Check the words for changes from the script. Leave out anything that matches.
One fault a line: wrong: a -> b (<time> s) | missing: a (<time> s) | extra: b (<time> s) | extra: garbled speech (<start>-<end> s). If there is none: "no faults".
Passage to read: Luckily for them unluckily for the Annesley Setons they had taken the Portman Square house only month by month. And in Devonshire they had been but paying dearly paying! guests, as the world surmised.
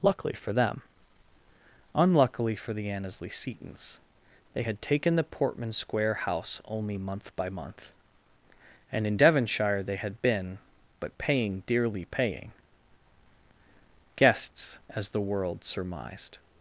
no faults